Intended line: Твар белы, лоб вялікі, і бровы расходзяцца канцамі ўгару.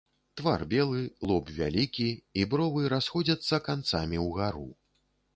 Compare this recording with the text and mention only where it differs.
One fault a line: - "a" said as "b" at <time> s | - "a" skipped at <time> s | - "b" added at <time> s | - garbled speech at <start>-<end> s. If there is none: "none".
none